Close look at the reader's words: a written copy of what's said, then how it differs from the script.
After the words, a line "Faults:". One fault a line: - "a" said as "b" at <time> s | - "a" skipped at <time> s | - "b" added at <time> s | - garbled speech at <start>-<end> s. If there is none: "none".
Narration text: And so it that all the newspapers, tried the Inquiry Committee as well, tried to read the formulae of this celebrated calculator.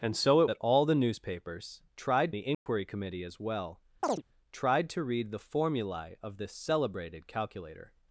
And so it that all the newspapers, tried the Inquiry Committee as well, tried to read the formulae of this celebrated calculator.
Faults:
none